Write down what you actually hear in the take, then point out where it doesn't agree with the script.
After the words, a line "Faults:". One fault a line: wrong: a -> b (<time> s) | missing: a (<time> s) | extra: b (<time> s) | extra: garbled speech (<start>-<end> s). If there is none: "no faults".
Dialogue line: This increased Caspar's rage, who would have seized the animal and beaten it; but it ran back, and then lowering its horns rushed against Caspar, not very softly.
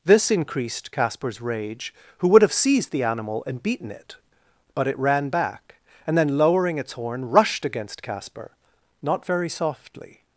This increased Caspar's rage, who would have seized the animal and beaten it; but it ran back, and then lowering its horn rushed against Caspar, not very softly.
Faults:
wrong: horns -> horn (6.9 s)